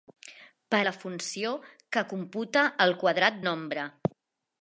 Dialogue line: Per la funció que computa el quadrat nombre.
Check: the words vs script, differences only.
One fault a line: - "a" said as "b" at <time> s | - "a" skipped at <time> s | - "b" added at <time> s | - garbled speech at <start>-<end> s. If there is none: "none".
none